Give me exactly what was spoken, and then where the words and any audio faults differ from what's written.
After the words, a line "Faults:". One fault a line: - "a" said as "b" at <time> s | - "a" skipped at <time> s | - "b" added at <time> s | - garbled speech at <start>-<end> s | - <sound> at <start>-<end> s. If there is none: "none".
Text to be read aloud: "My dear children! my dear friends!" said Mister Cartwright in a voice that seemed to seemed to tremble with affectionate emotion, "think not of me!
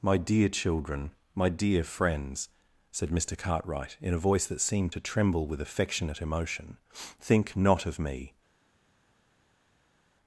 "My dear children! my dear friends!" said Mister Cartwright in a voice that seemed to tremble with affectionate emotion, "think not of me!
Faults:
- "seemed to" skipped at 5.0 s